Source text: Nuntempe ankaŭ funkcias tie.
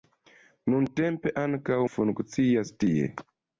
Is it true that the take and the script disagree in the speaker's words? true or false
false